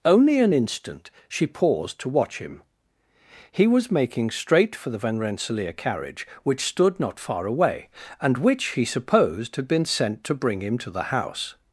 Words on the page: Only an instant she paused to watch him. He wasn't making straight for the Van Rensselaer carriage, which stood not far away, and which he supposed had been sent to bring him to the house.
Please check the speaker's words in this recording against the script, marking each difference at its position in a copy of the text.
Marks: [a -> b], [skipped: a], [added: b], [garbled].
Only an instant she paused to watch him. He [wasn't -> was] making straight for the Van Rensselaer carriage, which stood not far away, and which he supposed had been sent to bring him to the house.